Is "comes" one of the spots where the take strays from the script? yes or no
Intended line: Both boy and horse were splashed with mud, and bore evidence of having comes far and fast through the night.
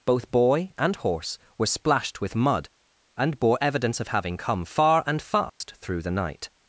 yes